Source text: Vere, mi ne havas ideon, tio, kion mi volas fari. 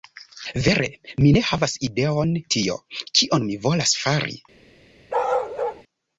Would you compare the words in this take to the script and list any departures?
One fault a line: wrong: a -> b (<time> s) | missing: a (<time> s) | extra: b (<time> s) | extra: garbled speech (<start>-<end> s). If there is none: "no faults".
no faults